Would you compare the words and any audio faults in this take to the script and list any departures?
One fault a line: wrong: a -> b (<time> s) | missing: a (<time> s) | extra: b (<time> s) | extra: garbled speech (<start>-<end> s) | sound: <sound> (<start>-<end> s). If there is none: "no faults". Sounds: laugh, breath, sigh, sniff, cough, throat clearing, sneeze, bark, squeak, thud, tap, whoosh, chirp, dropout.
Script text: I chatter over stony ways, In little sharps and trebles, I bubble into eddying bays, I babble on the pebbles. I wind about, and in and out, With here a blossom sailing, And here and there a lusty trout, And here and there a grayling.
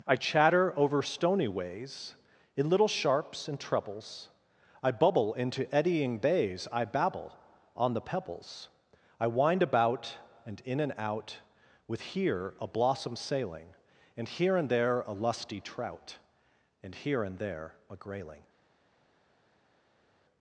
no faults